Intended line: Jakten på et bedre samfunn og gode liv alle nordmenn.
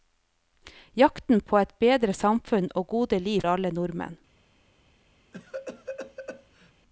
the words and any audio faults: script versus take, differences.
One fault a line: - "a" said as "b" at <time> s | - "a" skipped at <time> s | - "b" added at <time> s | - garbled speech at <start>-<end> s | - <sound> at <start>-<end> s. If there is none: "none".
- cough at 5.3-6.7 s